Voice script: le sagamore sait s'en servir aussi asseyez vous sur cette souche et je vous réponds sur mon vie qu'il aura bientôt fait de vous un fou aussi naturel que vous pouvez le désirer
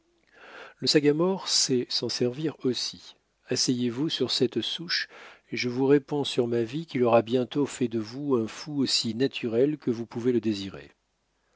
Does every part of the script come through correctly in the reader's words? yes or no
no